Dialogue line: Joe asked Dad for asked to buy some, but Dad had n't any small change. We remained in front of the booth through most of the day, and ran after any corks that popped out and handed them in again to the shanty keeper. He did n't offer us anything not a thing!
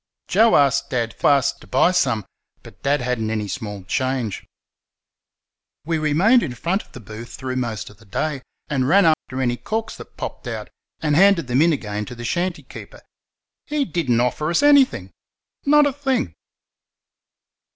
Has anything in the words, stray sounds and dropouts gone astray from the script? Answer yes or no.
yes